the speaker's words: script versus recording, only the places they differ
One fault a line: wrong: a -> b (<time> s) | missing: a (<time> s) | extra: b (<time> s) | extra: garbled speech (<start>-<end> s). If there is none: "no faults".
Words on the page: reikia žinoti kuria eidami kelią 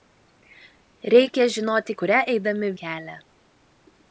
no faults